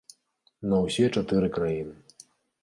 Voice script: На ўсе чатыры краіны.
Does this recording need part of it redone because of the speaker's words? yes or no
no